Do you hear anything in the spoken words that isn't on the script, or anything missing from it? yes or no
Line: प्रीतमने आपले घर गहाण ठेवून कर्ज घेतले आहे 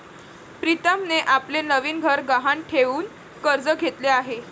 yes